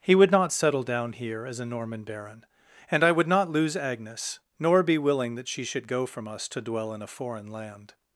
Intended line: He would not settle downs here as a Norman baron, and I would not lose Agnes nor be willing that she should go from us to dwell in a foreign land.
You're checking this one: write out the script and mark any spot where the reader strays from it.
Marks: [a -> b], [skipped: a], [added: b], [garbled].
He would not settle [downs -> down] here as a Norman baron, and I would not lose Agnes nor be willing that she should go from us to dwell in a foreign land.